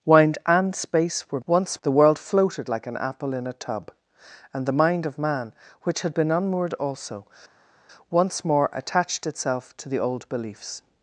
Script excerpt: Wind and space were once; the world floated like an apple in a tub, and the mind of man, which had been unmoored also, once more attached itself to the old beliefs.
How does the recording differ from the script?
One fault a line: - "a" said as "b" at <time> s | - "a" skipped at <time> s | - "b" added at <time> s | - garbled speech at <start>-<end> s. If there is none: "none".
none